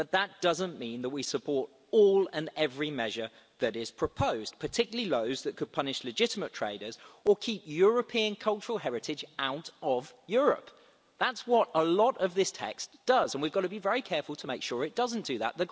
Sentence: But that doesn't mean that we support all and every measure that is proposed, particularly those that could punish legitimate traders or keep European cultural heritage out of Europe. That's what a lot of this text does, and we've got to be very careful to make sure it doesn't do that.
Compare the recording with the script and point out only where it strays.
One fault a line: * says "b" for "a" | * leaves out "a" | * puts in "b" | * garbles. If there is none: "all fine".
all fine